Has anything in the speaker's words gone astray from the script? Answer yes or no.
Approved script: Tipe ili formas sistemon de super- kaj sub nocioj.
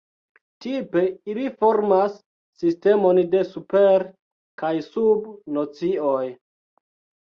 no